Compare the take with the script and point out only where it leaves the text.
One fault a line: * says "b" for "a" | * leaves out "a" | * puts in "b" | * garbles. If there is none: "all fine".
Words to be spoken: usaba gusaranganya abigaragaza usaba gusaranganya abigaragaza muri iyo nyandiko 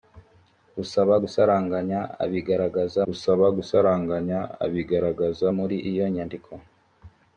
all fine